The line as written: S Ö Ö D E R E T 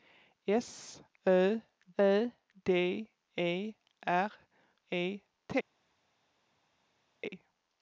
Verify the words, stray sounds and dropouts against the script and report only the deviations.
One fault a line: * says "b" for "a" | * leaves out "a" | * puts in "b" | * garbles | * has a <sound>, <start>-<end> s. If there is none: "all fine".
all fine